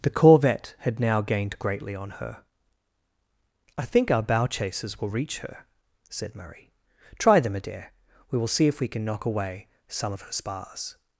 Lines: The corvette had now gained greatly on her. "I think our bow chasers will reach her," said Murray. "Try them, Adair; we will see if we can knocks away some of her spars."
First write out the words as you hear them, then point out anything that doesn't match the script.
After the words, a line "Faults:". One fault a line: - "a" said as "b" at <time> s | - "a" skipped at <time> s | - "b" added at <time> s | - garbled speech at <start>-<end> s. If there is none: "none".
The corvette had now gained greatly on her. "I think our bow chasers will reach her," said Murray. "Try them, Adair; we will see if we can knock away some of her spars."
Faults:
- "knocks" said as "knock" at 9.0 s